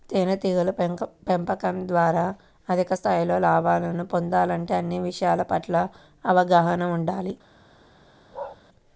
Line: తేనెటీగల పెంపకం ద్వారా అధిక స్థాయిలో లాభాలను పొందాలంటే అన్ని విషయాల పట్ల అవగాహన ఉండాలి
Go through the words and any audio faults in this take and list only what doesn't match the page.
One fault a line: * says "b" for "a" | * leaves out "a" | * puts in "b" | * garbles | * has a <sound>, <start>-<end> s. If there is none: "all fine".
* has a bark, 8.3-8.6 s